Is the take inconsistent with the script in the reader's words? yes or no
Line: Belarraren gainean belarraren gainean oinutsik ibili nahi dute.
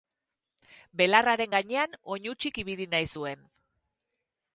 yes